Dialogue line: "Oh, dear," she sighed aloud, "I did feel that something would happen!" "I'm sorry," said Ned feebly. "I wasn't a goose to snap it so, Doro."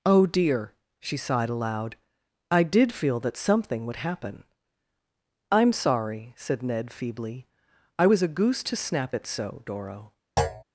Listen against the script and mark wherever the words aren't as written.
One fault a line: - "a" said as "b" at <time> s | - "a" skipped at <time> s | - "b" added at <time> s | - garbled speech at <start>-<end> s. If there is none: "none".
- "wasn't" said as "was" at 8.0 s